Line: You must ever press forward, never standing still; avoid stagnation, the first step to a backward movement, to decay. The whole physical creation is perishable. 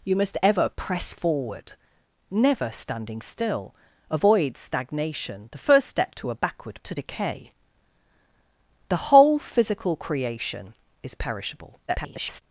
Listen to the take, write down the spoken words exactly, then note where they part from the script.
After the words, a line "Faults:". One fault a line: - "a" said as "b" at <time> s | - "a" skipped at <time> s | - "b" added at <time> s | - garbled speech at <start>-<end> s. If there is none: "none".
You must ever press forward, never standing still; avoid stagnation, the first step to a backward to decay. The whole physical creation is perishable. [garbled]
Faults:
- "movement" skipped at 6.8 s
- garbled speech at 11.9-12.4 s